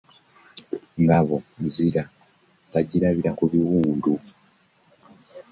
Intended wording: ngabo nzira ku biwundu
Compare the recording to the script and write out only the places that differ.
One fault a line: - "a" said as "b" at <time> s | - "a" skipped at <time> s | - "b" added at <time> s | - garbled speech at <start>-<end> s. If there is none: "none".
- "bagirabira" added at 2.7 s